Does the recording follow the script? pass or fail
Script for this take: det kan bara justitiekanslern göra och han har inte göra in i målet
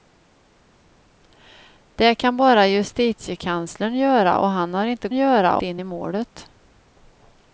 pass